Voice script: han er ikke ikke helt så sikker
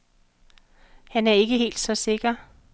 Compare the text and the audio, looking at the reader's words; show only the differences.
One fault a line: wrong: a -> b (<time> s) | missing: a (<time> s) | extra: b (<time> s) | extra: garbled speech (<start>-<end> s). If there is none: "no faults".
missing: ikke (1.6 s)